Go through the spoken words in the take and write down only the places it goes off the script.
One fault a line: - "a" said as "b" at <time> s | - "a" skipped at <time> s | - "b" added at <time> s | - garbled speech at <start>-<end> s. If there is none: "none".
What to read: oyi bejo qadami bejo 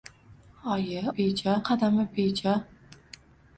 none